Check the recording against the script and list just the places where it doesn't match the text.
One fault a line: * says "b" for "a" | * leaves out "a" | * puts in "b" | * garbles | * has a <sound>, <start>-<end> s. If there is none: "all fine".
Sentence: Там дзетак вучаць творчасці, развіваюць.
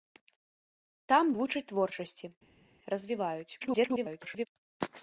* leaves out "дзетак"
* garbles